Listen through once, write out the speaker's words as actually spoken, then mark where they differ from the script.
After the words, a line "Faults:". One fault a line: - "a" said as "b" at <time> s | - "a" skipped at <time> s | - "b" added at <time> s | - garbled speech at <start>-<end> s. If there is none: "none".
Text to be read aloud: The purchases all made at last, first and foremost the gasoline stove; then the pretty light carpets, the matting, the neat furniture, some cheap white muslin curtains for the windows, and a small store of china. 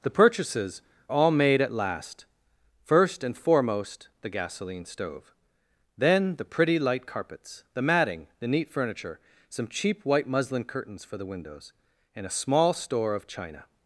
The purchases all made at last, first and foremost the gasoline stove; then the pretty light carpets, the matting, the neat furniture, some cheap white muslin curtains for the windows, and a small store of china.
Faults:
none